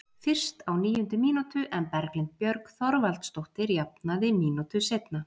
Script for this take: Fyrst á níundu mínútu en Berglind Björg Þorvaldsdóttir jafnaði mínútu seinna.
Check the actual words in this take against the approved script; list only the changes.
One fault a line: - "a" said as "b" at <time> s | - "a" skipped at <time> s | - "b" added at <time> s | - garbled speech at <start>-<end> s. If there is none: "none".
none